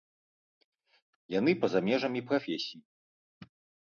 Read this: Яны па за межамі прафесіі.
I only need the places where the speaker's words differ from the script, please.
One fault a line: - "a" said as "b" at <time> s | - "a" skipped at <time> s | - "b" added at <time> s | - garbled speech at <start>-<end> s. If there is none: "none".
none